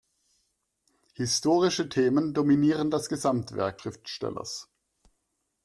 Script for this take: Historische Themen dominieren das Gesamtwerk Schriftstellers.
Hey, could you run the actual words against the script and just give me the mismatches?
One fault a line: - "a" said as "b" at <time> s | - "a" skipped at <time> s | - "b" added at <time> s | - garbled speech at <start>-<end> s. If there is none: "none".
none